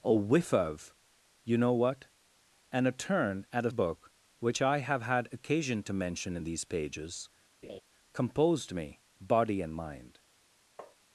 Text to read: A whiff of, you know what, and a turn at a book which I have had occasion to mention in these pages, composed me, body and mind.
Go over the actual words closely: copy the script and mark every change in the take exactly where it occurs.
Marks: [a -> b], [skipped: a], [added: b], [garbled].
A whiff of, you know what, and a turn at a book which I have had occasion to mention in these pages, composed me, body and mind.